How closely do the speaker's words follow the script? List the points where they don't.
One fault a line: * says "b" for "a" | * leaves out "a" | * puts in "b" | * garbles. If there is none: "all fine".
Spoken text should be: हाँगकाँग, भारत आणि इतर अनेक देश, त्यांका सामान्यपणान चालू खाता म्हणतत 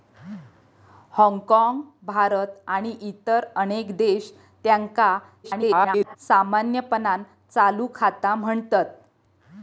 * garbles